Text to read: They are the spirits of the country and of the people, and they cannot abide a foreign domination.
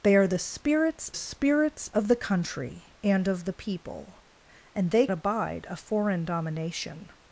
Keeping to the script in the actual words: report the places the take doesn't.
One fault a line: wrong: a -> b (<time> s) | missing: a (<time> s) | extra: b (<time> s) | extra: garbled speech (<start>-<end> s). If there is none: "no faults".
extra: spirits (1.1 s)
missing: cannot (5.1 s)